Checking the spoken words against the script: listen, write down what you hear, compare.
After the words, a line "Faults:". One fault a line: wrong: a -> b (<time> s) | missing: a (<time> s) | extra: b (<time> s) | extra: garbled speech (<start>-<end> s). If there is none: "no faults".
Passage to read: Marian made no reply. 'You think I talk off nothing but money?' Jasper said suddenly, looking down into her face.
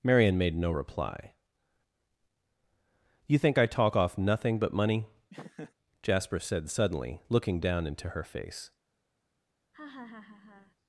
Marian made no reply. 'You think I talk off nothing but money?' Jasper said suddenly, looking down into her face.
Faults:
no faults